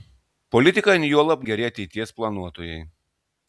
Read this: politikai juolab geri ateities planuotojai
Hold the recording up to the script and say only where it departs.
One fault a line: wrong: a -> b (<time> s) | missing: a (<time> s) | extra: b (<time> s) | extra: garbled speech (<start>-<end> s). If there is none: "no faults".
no faults